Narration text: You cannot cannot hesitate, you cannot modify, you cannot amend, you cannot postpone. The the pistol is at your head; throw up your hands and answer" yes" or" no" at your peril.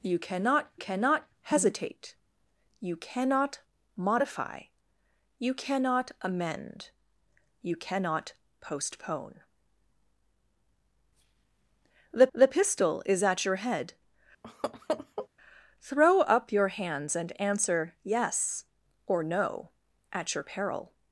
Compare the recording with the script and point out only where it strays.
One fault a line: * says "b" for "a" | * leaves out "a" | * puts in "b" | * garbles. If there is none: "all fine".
all fine